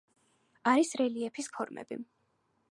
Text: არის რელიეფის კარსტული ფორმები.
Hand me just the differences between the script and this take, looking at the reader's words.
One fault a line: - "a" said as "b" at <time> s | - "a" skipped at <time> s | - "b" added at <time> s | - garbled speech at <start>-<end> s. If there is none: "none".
- "კარსტული" skipped at 1.5 s